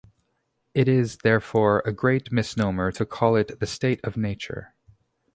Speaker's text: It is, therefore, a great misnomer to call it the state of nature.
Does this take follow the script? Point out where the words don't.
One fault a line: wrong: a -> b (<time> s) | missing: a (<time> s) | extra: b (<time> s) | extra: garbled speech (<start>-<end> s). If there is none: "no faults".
no faults